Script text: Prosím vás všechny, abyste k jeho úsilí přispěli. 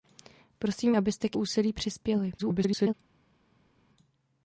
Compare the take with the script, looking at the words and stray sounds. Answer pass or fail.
fail